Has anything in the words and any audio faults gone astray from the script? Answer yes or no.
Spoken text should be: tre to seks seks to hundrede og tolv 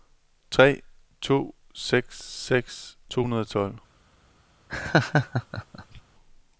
yes